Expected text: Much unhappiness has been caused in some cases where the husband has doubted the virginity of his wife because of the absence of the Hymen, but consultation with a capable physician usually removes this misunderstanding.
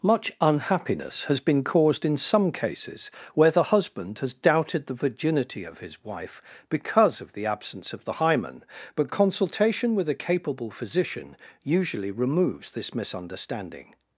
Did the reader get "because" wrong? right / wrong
right